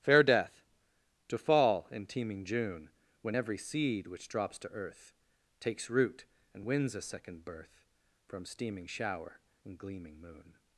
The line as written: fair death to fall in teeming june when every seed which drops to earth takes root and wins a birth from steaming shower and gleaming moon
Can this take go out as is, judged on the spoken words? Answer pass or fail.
fail